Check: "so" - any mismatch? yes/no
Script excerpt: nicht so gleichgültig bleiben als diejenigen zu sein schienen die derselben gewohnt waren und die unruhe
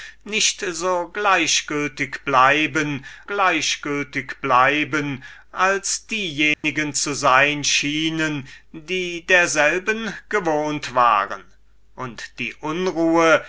no